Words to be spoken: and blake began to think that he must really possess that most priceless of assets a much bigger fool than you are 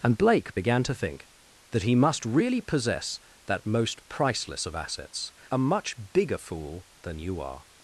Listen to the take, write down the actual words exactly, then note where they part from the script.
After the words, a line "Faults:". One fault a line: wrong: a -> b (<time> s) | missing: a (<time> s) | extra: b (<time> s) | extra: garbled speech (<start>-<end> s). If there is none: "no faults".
and blake began to think that he must really possess that most priceless of assets a much bigger fool than you are
Faults:
no faults